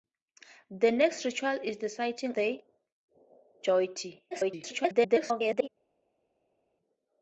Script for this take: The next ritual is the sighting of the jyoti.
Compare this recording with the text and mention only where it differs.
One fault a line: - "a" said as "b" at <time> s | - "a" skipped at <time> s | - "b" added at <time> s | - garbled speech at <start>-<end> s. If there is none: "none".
- "of" skipped at 2.4 s
- garbled speech at 4.3-5.7 s